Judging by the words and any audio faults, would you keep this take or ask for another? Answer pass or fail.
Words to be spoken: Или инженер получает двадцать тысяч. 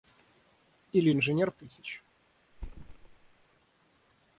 fail